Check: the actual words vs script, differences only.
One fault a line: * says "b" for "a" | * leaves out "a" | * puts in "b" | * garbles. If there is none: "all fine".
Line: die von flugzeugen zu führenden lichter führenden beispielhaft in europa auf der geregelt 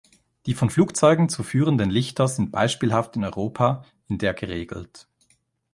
* says "sind" for "führenden"
* says "in" for "auf"